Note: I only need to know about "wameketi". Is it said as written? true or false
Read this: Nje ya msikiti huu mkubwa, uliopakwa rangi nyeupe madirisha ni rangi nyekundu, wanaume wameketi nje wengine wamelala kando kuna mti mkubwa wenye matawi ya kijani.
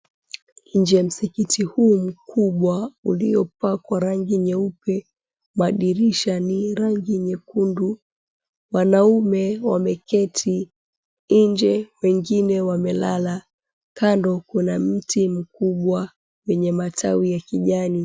true